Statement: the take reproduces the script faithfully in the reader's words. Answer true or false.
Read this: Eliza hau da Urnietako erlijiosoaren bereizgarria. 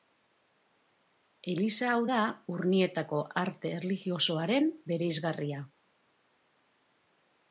false